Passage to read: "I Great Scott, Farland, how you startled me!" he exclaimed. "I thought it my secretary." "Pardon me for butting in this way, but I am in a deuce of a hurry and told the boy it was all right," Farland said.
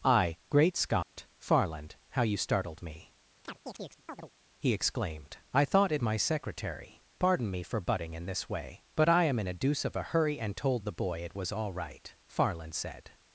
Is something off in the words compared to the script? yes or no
no